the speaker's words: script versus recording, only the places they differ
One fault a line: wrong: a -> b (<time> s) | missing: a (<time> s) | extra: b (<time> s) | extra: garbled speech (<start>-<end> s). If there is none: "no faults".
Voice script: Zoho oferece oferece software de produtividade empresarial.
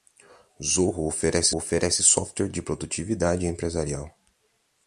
no faults